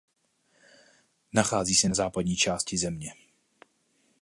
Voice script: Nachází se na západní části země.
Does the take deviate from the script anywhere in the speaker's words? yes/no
no